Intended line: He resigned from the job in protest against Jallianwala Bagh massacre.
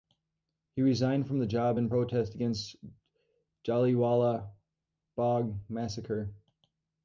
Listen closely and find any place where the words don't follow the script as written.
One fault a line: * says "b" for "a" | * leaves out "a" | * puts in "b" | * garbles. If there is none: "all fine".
all fine